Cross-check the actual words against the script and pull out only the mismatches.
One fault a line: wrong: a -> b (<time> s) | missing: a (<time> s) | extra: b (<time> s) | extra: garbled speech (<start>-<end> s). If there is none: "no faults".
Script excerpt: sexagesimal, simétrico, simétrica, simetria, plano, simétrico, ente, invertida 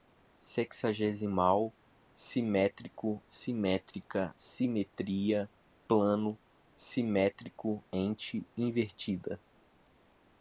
no faults